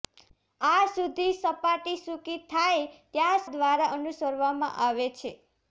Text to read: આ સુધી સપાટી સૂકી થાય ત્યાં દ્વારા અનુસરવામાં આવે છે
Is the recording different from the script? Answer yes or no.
no